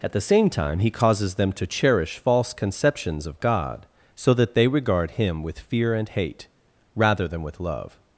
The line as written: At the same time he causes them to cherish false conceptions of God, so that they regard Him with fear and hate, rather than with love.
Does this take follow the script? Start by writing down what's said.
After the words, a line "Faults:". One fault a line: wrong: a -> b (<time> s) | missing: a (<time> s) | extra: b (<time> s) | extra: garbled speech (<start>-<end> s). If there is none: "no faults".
At the same time he causes them to cherish false conceptions of God, so that they regard Him with fear and hate, rather than with love.
Faults:
no faults